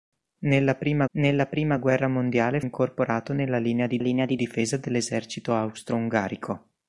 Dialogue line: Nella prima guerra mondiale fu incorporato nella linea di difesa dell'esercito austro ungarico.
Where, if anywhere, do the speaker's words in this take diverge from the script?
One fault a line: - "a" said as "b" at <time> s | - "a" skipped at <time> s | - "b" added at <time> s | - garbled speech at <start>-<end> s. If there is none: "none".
- "nella prima" added at 1.1 s
- "fu" skipped at 2.6 s
- "linea di" added at 4.0 s